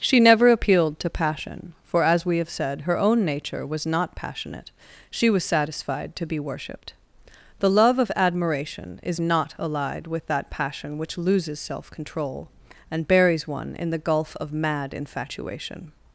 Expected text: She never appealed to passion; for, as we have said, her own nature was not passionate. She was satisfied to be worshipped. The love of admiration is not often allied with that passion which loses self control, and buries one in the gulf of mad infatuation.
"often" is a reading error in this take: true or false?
true